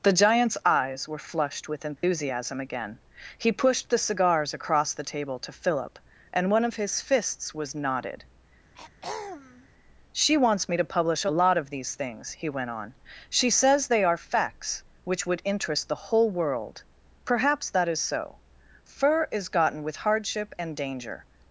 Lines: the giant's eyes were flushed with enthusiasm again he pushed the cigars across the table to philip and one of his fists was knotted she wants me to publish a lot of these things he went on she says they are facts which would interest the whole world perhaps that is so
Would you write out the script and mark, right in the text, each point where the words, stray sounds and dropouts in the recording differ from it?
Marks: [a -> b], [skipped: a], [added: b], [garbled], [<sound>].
the giant's eyes were flushed with enthusiasm [dropout] again he pushed the cigars across the table to philip and one of his fists was knotted [throat clearing] she wants me to publish a lot of these things he went on she says they are facts which would interest the whole world perhaps that is so [added: fur is gotten with hardship and danger]